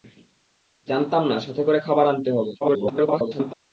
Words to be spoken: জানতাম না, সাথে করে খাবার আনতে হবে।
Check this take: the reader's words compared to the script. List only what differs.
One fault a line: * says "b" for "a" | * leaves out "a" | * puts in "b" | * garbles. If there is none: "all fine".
* garbles